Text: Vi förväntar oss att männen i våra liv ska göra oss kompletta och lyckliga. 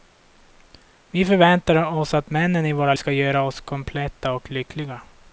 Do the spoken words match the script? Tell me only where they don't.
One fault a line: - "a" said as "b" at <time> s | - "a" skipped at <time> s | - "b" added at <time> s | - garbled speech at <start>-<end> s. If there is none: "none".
- "liv" skipped at 2.9 s